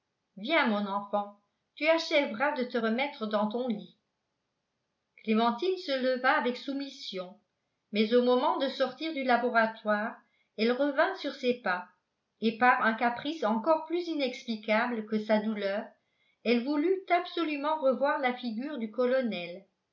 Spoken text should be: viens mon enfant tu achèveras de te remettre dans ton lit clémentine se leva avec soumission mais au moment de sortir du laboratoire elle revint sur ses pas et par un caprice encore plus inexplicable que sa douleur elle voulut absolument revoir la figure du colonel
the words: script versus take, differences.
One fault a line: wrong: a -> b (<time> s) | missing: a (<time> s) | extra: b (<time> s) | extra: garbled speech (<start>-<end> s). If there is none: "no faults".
no faults